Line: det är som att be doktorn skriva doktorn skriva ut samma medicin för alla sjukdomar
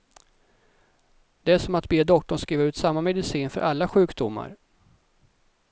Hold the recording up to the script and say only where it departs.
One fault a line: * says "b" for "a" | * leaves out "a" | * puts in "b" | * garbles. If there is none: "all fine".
* leaves out "doktorn skriva"